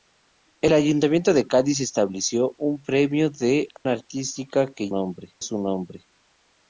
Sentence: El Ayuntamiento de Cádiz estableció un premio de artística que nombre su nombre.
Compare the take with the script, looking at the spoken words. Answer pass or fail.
pass